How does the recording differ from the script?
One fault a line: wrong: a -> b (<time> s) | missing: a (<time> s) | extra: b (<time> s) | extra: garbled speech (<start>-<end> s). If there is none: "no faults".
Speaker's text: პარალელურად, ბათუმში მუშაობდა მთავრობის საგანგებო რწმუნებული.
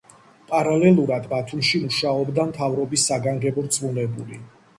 no faults